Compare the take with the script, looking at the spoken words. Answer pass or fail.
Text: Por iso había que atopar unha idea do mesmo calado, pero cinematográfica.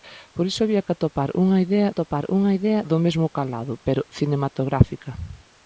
fail